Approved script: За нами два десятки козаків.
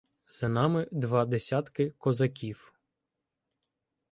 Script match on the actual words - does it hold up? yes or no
yes